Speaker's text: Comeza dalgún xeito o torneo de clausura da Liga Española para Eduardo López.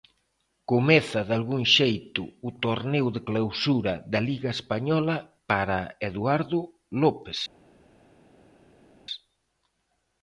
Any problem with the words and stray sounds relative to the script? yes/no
no